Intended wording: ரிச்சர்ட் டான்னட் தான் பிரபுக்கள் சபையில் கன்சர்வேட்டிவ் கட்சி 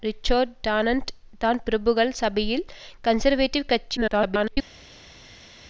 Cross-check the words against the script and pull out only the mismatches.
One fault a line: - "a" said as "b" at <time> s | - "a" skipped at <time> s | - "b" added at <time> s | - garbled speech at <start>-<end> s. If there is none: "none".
- garbled speech at 4.0-4.6 s